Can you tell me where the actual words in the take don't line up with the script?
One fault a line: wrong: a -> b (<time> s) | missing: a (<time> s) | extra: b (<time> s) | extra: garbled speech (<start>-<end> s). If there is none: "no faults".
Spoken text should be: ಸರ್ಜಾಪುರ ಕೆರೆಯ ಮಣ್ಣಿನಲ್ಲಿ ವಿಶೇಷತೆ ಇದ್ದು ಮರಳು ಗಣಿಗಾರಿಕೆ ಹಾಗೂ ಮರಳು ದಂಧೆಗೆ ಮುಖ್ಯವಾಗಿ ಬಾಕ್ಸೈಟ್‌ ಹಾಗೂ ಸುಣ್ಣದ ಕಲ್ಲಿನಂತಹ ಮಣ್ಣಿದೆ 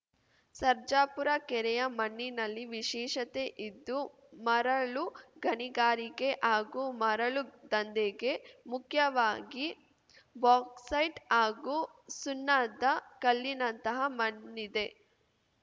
no faults